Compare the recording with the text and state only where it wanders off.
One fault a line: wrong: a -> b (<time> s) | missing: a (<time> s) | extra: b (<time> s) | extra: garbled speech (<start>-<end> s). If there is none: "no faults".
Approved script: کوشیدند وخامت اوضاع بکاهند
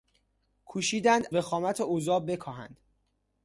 no faults